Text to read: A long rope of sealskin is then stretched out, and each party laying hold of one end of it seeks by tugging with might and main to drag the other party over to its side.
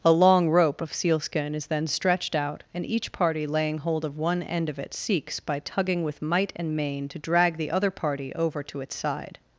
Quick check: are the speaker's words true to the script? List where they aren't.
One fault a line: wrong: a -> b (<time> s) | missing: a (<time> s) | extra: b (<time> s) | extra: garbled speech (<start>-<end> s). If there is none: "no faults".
no faults